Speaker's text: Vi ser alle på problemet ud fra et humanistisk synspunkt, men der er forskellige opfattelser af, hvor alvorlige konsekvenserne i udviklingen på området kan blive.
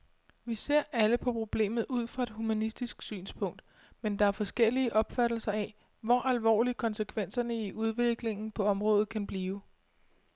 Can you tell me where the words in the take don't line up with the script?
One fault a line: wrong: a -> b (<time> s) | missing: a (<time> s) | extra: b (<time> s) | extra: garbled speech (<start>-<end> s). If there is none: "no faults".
no faults